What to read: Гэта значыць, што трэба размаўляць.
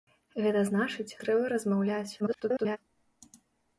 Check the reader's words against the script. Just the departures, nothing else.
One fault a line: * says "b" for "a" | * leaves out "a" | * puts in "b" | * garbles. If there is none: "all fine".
* leaves out "што"
* garbles